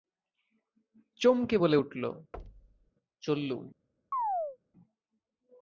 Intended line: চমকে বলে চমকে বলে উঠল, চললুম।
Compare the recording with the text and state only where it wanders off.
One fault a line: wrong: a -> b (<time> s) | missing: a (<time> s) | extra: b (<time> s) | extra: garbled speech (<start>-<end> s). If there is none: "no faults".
missing: চমকে বলে (1.8 s)